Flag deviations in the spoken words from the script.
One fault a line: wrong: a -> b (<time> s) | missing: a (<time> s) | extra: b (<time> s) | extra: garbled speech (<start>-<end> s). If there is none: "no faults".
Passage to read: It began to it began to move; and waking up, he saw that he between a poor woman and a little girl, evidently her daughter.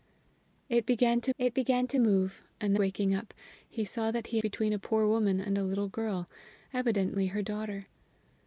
no faults